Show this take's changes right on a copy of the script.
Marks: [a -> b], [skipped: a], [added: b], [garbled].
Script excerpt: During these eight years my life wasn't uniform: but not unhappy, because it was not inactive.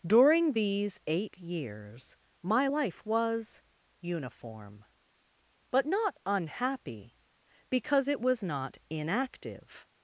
During these eight years my life [wasn't -> was] uniform: but not unhappy, because it was not inactive.